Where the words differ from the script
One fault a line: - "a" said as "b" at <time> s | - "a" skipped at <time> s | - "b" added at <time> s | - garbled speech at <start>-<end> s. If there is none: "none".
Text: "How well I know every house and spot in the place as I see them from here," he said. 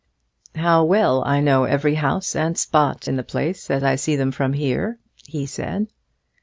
none